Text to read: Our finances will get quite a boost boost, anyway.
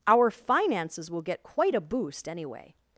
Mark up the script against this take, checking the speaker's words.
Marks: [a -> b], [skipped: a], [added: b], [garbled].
Our finances will get quite a boost [skipped: boost,] anyway.